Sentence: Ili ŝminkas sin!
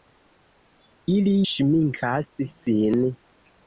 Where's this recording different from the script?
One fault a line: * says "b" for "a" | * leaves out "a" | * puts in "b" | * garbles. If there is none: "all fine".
all fine